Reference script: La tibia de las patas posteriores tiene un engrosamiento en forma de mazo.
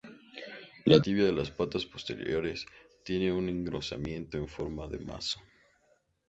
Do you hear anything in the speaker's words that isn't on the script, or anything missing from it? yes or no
no